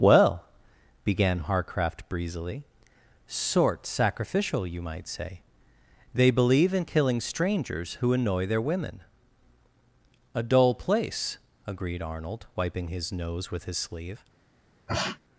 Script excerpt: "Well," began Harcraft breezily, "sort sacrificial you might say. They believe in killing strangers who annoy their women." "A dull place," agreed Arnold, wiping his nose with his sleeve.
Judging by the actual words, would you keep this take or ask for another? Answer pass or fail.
pass